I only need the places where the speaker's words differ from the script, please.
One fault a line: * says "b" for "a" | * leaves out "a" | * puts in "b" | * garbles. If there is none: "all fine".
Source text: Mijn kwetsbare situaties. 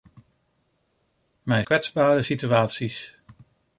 all fine